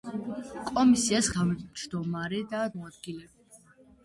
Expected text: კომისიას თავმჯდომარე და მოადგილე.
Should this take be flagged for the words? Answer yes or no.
no